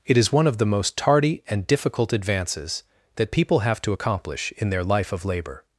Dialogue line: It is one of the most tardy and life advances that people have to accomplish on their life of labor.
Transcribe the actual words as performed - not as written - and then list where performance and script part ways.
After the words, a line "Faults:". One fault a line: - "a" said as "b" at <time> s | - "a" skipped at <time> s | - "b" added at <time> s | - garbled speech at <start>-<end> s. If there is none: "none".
It is one of the most tardy and difficult advances that people have to accomplish in their life of labor.
Faults:
- "life" said as "difficult" at 1.7 s
- "on" said as "in" at 4.6 s